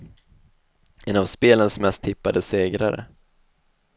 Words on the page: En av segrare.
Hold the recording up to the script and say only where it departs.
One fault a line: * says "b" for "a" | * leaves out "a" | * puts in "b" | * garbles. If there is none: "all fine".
* puts in "spelens mest tippade"